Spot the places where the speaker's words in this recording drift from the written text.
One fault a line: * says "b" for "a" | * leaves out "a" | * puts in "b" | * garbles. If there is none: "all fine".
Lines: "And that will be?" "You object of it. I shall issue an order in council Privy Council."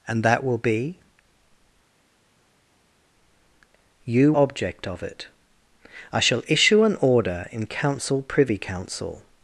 all fine